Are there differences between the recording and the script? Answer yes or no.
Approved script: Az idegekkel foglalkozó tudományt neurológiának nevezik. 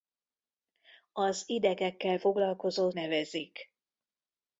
yes